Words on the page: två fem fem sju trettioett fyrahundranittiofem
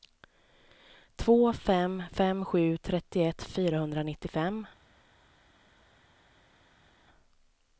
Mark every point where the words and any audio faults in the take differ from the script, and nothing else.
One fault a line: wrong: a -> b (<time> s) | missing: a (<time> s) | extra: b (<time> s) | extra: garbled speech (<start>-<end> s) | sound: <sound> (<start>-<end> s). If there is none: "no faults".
no faults